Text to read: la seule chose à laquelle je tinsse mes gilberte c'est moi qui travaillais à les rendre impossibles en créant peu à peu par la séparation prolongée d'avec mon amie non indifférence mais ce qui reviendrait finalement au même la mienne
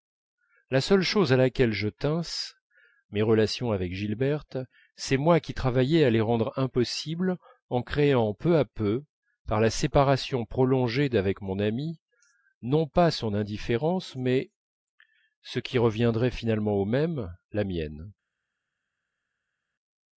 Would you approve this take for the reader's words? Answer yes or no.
no